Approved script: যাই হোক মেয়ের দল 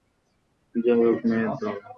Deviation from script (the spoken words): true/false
false